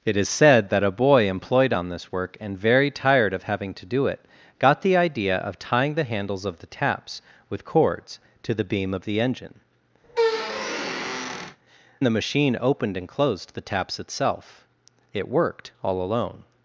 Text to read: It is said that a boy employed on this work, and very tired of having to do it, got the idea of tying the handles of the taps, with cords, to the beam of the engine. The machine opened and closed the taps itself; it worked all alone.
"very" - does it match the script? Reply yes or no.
yes